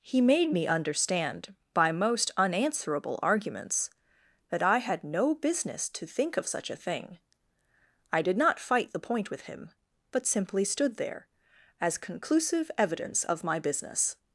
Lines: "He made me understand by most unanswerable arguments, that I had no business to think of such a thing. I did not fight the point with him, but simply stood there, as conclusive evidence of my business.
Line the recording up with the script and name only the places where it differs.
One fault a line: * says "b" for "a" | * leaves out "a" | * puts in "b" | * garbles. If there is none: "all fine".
all fine